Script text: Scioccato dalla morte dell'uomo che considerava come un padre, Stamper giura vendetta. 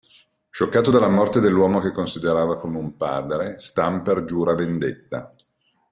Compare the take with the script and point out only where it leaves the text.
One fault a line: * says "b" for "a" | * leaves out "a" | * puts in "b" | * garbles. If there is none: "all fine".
all fine